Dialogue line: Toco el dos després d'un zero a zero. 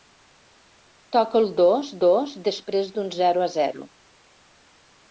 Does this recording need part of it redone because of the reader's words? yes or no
yes